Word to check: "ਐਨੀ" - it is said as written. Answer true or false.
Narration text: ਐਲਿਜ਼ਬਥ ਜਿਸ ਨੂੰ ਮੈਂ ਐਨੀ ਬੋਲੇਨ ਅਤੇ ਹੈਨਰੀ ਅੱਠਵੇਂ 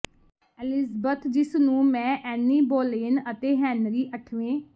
true